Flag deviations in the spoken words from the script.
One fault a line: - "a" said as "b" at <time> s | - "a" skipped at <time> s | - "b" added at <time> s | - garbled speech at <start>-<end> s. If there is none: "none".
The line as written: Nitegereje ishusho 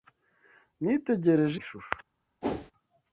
none